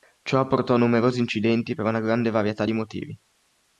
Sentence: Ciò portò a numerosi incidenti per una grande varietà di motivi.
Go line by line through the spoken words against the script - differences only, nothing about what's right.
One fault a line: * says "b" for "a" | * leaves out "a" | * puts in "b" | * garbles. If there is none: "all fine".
all fine